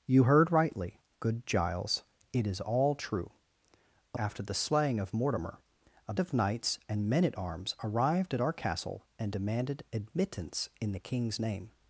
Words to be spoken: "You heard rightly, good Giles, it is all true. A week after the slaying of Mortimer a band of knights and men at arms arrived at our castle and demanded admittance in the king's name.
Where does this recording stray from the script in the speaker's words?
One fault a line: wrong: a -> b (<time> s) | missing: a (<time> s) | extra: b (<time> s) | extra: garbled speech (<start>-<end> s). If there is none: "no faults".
missing: week (4.2 s)
missing: band (6.1 s)